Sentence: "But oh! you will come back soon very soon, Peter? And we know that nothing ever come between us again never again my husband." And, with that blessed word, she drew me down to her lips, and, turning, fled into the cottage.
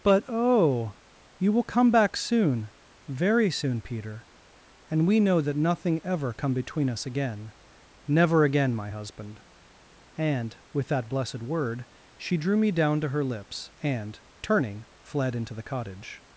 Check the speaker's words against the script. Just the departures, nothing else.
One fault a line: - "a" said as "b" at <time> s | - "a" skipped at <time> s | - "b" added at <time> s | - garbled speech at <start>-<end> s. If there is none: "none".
none